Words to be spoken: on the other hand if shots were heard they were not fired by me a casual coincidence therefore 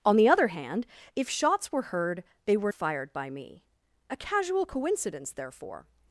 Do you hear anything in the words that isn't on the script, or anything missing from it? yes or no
yes